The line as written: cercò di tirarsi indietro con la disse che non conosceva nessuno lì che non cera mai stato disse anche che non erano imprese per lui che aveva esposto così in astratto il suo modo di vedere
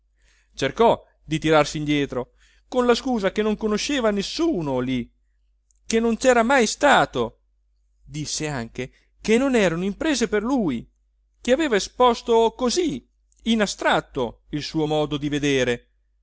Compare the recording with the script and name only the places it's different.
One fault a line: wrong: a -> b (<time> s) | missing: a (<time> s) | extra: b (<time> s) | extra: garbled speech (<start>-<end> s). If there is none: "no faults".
wrong: disse -> scusa (3.0 s)